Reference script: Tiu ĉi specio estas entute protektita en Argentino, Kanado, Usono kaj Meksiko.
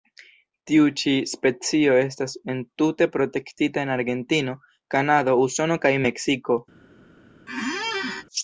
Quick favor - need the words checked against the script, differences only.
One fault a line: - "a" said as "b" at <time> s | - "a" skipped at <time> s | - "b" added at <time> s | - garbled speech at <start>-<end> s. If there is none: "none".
none